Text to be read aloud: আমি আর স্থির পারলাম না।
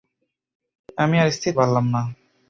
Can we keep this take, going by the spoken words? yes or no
yes